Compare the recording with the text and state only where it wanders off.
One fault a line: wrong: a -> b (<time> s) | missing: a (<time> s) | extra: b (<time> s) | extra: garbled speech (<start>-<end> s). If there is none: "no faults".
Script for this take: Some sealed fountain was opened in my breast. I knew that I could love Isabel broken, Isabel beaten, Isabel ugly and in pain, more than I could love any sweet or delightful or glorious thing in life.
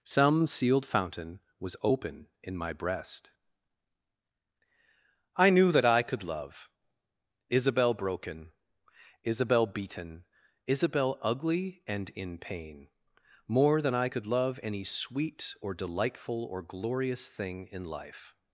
wrong: opened -> open (1.8 s)